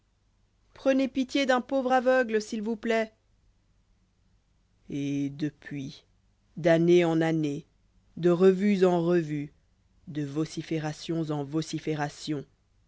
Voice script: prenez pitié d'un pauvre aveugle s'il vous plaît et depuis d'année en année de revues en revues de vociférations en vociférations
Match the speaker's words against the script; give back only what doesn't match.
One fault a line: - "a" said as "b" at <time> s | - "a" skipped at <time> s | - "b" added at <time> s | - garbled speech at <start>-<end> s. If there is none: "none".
none